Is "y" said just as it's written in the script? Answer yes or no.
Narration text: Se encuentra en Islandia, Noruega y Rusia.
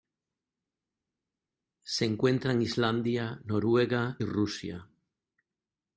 no